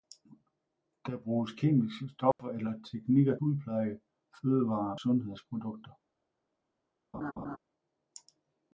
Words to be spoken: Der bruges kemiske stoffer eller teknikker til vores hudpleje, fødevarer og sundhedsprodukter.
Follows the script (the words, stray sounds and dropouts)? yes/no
no